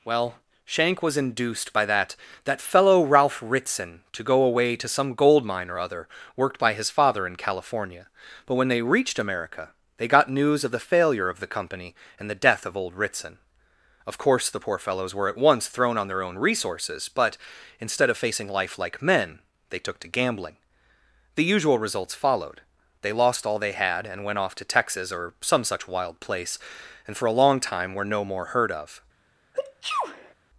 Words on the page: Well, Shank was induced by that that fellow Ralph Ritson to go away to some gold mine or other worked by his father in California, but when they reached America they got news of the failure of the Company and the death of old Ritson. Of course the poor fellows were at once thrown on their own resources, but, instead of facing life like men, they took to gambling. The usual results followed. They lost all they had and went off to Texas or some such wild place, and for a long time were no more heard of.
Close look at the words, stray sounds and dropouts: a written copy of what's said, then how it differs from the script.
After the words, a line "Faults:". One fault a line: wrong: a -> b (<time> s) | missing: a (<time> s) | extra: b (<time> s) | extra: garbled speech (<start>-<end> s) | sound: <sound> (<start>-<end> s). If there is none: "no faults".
Well, Shank was induced by that that fellow Ralph Ritson to go away to some gold mine or other worked by his father in California, but when they reached America they got news of the failure of the Company and the death of old Ritson. Of course the poor fellows were at once thrown on their own resources, but, instead of facing life like men, they took to gambling. The usual results followed. They lost all they had and went off to Texas or some such wild place, and for a long time were no more heard of.
Faults:
sound: sneeze (29.5-30.3 s)